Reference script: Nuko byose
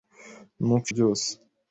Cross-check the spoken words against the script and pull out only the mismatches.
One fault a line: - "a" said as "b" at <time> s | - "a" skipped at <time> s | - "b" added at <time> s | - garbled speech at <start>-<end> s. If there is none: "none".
none